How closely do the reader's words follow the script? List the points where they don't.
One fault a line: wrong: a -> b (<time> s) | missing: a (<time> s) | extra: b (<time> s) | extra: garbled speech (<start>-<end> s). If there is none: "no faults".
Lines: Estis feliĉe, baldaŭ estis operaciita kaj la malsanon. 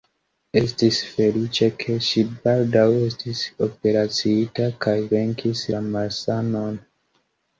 extra: ke ŝi (1.8 s)
extra: venkis (5.2 s)